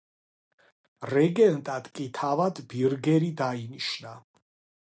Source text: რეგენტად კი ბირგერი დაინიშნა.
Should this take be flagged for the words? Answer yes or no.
yes